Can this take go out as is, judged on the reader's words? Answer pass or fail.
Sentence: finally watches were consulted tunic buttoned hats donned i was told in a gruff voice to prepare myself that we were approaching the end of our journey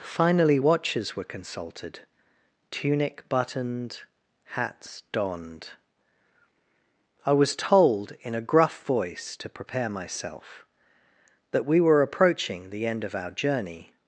pass